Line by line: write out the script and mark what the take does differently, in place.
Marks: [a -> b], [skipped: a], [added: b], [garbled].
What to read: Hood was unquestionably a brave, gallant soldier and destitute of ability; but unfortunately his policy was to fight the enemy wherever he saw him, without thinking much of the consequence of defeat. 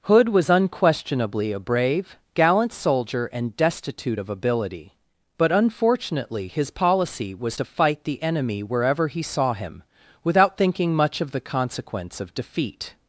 Hood was unquestionably a brave, gallant soldier and destitute of ability; but unfortunately his policy was to fight the enemy wherever he saw him, without thinking much of the consequence of defeat.